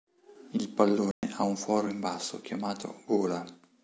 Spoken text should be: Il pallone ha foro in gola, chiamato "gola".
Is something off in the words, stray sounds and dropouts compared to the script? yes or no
yes